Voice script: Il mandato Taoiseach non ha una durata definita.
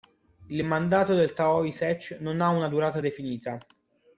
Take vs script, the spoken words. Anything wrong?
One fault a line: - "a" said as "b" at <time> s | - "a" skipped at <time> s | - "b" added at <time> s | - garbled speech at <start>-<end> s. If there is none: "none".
- "del" added at 1.1 s